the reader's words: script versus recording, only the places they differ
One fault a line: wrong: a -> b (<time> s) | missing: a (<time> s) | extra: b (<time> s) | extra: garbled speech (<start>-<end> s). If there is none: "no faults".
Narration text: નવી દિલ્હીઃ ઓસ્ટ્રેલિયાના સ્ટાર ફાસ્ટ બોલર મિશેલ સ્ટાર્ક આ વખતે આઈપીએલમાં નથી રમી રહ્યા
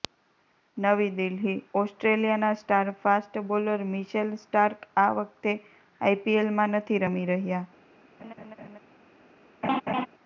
no faults